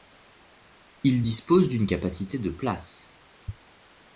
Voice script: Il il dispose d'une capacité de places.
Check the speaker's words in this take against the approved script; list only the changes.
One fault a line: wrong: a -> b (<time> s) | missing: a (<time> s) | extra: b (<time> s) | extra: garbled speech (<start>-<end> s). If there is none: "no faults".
missing: il (1.2 s)